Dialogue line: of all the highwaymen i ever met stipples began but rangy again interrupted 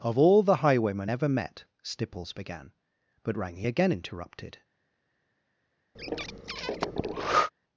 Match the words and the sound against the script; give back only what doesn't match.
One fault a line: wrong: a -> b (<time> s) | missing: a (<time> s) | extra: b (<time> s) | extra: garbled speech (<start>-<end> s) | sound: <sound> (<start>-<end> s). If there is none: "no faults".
missing: i (1.1 s)
sound: breath (5.9-7.5 s)